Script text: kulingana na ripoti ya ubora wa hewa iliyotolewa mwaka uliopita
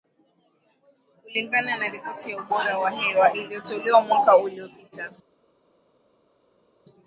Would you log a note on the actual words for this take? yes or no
no